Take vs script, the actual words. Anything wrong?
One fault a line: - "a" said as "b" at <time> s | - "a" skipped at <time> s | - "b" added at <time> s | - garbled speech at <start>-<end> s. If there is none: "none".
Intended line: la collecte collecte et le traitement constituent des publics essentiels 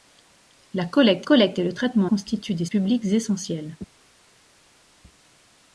none